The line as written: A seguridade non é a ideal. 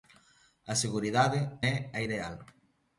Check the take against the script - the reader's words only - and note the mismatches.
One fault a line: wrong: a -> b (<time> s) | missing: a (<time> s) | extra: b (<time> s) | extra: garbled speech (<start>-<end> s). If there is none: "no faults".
missing: non (1.4 s)